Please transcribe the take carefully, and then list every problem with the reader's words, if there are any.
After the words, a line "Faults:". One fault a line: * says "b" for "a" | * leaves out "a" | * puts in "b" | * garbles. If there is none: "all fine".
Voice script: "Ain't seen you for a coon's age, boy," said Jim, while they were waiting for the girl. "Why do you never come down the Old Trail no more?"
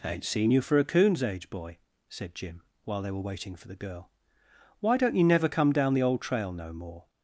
"Ain't seen you for a coon's age, boy," said Jim, while they were waiting for the girl. "Why don't you never come down the Old Trail no more?"
Faults:
* says "don't" for "do"